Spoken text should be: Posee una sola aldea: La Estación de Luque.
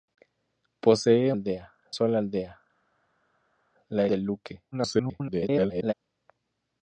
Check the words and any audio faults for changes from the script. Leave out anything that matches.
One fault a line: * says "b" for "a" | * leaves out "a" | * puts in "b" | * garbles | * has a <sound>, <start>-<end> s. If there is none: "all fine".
* says "aldea" for "una"
* leaves out "Estación"
* garbles